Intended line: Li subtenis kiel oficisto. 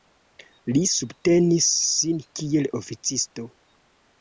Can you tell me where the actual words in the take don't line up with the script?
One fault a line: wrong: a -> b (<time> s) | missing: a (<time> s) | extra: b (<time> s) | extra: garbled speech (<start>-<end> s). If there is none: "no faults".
extra: sin (1.9 s)